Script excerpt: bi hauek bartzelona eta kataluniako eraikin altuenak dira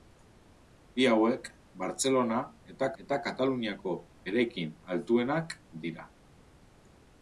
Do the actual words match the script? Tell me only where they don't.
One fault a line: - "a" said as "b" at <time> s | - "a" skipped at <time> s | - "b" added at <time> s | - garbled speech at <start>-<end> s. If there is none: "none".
- "eta" added at 3.0 s